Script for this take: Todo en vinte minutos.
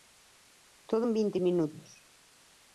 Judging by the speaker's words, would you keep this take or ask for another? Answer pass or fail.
pass